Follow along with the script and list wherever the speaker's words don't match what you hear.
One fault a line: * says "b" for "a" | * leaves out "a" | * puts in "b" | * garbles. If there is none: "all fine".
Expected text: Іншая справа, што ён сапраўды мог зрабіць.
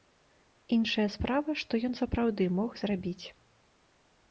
all fine